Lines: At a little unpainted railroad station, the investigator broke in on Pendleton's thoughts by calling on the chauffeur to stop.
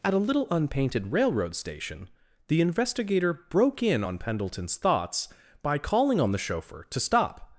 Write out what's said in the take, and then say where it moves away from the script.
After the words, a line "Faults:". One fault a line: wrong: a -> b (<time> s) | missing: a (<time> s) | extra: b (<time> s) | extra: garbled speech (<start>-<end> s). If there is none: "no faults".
At a little unpainted railroad station, the investigator broke in on Pendleton's thoughts by calling on the chauffeur to stop.
Faults:
no faults